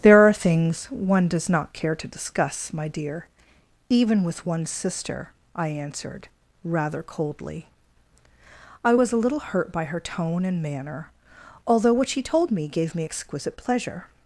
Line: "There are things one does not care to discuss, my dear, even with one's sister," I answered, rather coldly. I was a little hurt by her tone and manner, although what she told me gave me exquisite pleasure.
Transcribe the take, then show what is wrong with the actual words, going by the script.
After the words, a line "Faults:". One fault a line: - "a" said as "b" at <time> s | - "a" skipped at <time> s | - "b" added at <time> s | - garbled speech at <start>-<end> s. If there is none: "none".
"There are things one does not care to discuss, my dear, even with one's sister," I answered, rather coldly. I was a little hurt by her tone and manner, although what she told me gave me exquisite pleasure.
Faults:
none